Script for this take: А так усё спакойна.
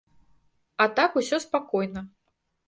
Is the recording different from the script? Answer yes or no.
no